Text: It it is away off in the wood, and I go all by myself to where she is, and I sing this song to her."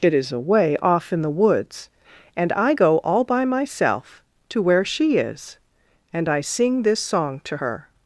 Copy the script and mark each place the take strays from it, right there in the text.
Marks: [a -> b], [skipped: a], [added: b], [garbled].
It [skipped: it] is away off in the [wood, -> woods] and I go all by myself to where she is, and I sing this song to her."